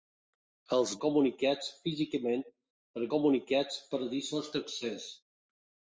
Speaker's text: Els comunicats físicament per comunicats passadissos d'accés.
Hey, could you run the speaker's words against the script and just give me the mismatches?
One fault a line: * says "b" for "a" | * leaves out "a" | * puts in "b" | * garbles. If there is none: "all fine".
all fine